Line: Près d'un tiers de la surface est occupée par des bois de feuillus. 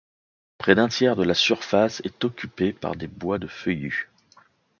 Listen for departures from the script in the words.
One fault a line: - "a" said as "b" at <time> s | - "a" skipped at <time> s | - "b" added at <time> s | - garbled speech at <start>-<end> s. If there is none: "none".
none